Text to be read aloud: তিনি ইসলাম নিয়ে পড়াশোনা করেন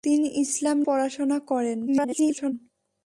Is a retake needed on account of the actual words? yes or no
yes